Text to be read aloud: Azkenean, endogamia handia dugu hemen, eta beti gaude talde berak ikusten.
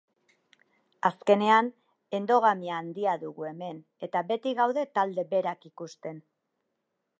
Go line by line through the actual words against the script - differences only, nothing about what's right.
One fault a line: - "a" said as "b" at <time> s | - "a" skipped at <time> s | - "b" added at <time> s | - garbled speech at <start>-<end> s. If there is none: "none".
none